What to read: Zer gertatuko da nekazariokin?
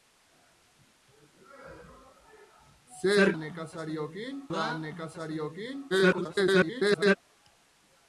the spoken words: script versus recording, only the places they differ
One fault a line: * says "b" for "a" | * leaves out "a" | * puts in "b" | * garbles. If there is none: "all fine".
* says "nekazariokin" for "gertatuko"
* garbles